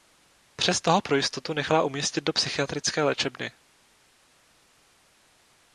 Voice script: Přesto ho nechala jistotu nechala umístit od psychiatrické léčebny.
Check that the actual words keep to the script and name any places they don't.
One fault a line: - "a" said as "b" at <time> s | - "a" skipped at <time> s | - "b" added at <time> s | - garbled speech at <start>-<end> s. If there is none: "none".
- "nechala" said as "pro" at 1.0 s
- "od" said as "do" at 2.2 s